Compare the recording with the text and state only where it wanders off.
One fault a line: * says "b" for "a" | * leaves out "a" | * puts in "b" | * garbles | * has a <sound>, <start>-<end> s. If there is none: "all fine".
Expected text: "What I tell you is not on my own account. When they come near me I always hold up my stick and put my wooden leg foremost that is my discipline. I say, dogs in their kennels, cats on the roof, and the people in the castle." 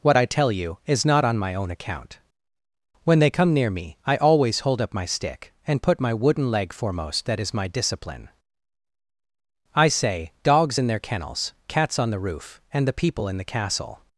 all fine